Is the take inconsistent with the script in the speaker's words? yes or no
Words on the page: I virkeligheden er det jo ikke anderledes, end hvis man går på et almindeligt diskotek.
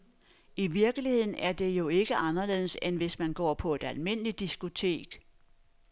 no